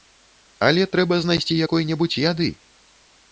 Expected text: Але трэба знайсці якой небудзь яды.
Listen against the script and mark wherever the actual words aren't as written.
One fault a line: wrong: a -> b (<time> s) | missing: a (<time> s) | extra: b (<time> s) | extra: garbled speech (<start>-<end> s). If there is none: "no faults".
no faults